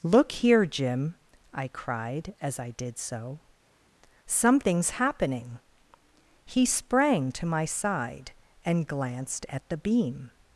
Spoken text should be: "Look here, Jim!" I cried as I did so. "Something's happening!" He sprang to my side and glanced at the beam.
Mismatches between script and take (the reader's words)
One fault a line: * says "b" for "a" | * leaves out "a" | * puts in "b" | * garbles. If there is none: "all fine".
all fine